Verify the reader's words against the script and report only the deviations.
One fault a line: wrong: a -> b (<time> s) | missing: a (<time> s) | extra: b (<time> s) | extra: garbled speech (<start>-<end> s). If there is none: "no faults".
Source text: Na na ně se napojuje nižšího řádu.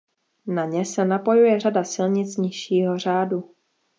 missing: na (0.7 s)
extra: řada silnic (1.6 s)